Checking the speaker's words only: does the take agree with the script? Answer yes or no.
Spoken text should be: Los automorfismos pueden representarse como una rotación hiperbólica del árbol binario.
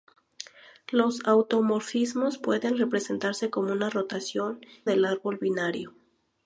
no